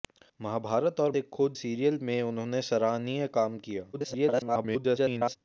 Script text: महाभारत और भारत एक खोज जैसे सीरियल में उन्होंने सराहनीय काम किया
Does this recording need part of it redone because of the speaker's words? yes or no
yes